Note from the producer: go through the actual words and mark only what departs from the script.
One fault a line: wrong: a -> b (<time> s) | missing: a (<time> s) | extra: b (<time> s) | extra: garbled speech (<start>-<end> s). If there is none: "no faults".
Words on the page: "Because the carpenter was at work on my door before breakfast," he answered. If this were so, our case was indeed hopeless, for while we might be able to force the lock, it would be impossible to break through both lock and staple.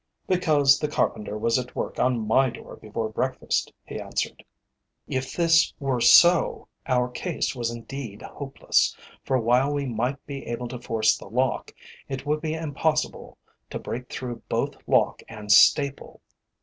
no faults